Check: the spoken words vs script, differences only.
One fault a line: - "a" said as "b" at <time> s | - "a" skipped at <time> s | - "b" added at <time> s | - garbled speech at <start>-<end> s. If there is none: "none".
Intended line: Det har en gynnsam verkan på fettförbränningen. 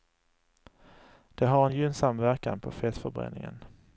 none